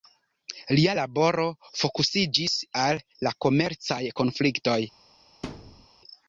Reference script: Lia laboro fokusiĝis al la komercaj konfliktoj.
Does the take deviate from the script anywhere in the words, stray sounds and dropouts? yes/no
yes